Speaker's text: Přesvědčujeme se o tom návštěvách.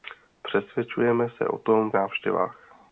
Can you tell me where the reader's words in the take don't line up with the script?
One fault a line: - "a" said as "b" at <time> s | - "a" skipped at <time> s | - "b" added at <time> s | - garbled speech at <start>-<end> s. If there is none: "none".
none